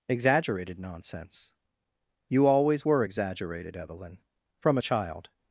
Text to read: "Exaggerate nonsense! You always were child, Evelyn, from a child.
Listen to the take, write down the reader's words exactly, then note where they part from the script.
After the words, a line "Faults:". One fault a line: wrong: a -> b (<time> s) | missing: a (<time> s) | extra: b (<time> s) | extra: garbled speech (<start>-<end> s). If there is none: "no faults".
"Exaggerated nonsense! You always were exaggerated, Evelyn, from a child.
Faults:
wrong: Exaggerate -> Exaggerated (0.1 s)
wrong: child -> exaggerated (3.0 s)